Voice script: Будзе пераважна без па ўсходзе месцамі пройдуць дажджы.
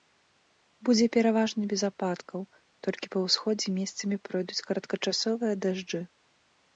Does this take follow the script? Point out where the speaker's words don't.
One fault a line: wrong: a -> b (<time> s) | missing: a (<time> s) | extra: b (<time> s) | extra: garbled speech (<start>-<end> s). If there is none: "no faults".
extra: ападкаў толькі (1.9 s)
extra: кароткачасовыя (4.7 s)